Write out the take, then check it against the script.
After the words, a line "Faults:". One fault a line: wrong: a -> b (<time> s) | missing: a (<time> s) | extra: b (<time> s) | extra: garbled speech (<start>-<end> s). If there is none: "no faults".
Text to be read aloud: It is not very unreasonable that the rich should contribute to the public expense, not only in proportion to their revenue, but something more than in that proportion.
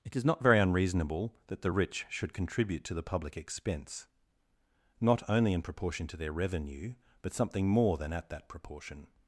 It is not very unreasonable that the rich should contribute to the public expense, not only in proportion to their revenue, but something more than at that proportion.
Faults:
wrong: in -> at (8.1 s)